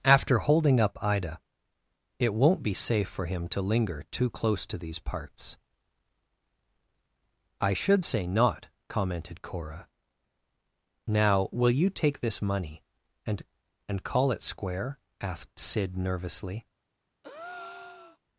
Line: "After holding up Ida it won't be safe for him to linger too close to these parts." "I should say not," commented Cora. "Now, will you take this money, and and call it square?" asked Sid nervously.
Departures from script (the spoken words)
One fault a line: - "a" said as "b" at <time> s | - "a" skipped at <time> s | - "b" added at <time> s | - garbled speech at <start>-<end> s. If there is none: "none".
none